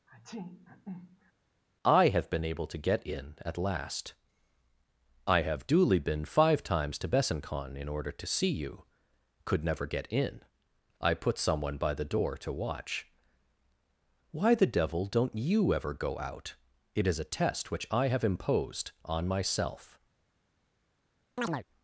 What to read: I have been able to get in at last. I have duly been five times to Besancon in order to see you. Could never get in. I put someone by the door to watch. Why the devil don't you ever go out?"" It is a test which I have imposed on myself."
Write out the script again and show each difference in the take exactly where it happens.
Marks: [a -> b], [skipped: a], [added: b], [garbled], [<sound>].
[sneeze] I have been able to get in at last. I have duly been five times to Besancon in order to see you. Could never get in. I put someone by the door to watch. Why the devil don't you ever go out?"" It is a test which I have imposed on myself." [chirp]